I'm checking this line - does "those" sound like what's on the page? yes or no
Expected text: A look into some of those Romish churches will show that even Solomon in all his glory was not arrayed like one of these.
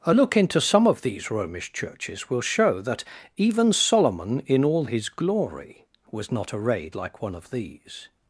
no